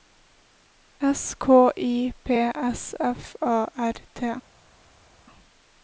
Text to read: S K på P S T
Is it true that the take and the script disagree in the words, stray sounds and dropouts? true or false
true